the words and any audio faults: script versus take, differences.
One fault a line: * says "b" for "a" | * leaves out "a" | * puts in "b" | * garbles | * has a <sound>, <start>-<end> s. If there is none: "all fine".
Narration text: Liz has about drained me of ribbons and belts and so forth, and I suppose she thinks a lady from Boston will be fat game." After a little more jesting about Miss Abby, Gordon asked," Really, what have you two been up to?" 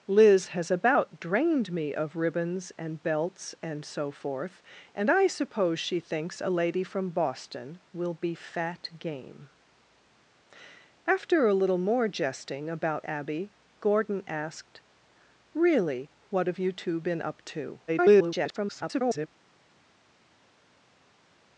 * leaves out "Miss"
* garbles